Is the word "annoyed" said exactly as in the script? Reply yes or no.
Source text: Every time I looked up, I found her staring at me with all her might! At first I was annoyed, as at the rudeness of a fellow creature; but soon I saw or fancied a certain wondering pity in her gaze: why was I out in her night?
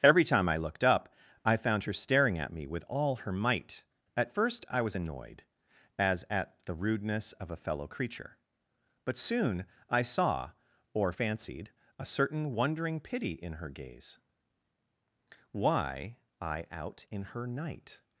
yes